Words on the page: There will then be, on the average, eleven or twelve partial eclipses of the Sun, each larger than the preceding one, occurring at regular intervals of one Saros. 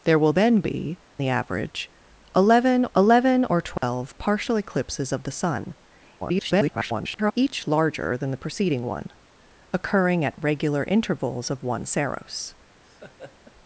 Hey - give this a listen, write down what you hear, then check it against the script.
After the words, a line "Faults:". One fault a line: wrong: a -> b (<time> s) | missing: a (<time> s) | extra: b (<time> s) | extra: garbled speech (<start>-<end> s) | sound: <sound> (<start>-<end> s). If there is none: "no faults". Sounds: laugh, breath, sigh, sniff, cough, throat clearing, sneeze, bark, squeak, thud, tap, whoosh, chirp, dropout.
There will then be, the average, eleven eleven or twelve partial eclipses of the Sun, [garbled] each larger than the preceding one, occurring at regular intervals of one Saros.
Faults:
missing: on (1.0 s)
extra: eleven (3.0 s)
sound: dropout (3.8-3.8 s)
extra: garbled speech (6.2-7.3 s)
sound: laugh (12.8-13.5 s)